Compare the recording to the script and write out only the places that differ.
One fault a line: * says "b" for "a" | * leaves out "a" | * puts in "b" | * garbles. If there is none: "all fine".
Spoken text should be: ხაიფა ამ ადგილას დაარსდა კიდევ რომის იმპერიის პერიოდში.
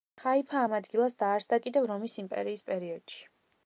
all fine